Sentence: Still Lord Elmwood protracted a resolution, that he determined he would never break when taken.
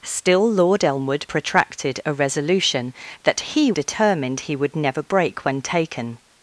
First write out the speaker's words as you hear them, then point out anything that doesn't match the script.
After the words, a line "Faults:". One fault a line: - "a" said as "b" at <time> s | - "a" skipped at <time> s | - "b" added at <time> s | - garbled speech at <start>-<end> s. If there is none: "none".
Still Lord Elmwood protracted a resolution, that he determined he would never break when taken.
Faults:
none